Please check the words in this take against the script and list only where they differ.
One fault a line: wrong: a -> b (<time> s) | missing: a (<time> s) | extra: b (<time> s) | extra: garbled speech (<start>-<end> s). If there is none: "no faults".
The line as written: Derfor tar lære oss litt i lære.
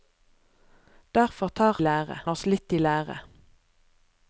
no faults